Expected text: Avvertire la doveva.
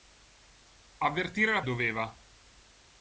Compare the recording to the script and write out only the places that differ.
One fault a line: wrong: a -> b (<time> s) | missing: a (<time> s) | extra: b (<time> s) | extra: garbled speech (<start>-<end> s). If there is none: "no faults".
no faults